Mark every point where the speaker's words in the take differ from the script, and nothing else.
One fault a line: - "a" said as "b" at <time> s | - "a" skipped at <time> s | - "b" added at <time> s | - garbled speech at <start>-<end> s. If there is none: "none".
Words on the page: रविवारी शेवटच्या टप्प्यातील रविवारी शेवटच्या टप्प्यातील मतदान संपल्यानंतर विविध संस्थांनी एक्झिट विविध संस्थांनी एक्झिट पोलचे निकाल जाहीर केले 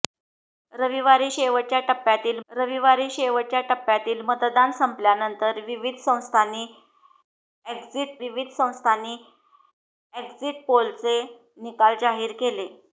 none